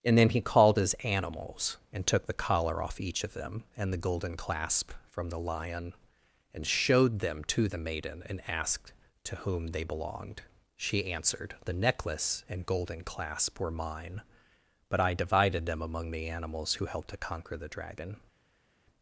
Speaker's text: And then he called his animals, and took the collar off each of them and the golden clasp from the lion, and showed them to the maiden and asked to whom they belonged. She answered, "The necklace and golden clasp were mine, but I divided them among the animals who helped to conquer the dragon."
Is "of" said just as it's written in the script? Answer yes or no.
yes